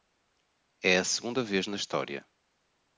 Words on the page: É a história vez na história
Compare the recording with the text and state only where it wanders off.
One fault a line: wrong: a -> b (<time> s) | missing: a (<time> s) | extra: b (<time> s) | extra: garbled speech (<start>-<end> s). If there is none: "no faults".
wrong: história -> segunda (1.0 s)